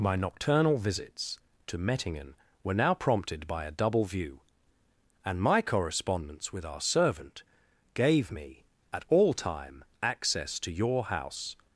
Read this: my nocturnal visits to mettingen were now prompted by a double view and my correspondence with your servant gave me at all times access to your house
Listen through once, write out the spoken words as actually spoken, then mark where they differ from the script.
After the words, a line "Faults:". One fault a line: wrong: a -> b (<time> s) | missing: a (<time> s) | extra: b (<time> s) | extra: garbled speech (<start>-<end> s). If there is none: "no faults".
my nocturnal visits to mettingen were now prompted by a double view and my correspondence with our servant gave me at all time access to your house
Faults:
wrong: your -> our (6.7 s)
wrong: times -> time (9.3 s)